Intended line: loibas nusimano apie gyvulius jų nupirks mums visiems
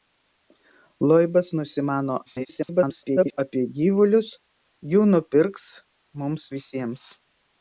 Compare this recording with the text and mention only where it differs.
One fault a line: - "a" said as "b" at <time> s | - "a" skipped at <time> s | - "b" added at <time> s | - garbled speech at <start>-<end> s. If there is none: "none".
- garbled speech at 2.3-3.4 s